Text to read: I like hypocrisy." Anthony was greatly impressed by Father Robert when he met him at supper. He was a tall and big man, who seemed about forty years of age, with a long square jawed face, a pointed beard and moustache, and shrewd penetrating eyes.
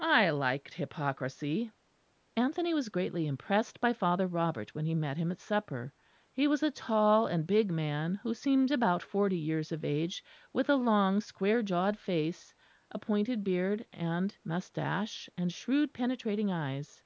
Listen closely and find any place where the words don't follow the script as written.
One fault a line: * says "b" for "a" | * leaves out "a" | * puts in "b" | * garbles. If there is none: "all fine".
all fine